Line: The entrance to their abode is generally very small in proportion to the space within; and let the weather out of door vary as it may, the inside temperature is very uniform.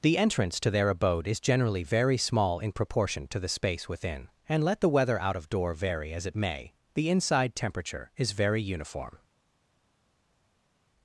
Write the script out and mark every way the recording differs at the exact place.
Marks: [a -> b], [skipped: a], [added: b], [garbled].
The entrance to their abode is generally very small in proportion to the space within; and let the weather out of door vary as it may, the inside temperature is very uniform.